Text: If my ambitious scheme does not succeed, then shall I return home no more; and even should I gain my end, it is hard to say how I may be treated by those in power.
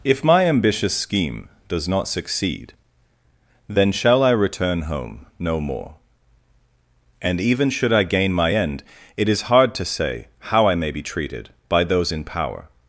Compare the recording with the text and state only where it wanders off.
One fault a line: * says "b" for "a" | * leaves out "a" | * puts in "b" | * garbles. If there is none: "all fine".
all fine